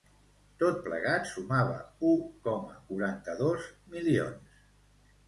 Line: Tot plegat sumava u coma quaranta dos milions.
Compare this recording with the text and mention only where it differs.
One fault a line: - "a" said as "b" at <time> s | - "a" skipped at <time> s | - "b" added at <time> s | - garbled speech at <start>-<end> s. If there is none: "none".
none